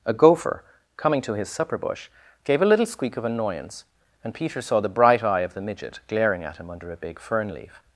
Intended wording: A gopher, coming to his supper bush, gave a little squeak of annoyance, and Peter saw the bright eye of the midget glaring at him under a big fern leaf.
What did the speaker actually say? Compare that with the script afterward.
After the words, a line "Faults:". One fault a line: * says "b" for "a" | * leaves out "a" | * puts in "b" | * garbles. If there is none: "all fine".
A gopher, coming to his supper bush, gave a little squeak of annoyance, and Peter saw the bright eye of the midget glaring at him under a big fern leaf.
Faults:
all fine